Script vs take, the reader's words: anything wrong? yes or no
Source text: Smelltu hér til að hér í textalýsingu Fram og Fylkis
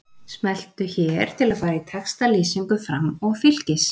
yes